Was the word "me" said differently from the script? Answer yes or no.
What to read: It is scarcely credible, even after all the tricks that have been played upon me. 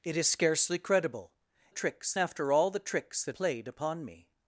no